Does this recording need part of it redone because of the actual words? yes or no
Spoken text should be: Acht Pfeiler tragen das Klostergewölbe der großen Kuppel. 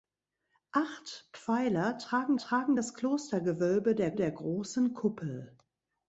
yes